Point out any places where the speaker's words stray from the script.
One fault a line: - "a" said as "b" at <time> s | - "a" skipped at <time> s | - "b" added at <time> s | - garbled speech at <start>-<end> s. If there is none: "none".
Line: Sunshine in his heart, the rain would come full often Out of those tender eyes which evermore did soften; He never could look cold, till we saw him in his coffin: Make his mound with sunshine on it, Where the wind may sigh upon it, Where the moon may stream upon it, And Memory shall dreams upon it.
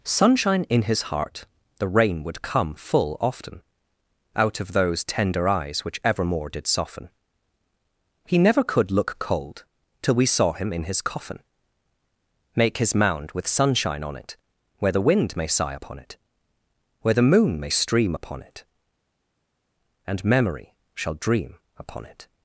- "dreams" said as "dream" at 21.2 s